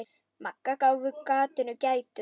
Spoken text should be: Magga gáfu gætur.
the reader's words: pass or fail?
fail